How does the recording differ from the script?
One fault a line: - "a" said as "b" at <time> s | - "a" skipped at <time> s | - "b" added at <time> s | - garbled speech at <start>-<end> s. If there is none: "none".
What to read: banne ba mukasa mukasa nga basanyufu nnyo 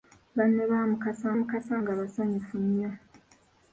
none